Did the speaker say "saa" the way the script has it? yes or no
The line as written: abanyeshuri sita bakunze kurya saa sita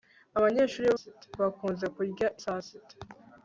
yes